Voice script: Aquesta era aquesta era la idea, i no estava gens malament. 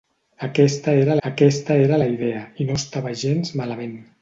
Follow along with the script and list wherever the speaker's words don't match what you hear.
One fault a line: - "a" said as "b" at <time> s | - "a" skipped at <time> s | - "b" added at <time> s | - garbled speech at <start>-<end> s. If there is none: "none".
none